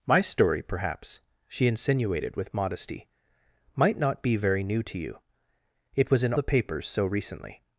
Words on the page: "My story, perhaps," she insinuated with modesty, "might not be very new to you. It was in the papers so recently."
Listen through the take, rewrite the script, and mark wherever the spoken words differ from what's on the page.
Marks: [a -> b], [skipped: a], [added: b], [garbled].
"My story, perhaps," she insinuated with modesty, "might not be very new to you. It was in the papers so recently."